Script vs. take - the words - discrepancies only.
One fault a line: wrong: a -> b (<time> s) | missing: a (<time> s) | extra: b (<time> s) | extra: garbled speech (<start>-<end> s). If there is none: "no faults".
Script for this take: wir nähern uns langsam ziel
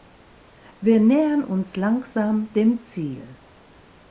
extra: dem (2.5 s)